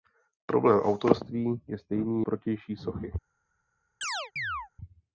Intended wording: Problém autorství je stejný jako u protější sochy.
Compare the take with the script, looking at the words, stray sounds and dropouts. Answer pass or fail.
fail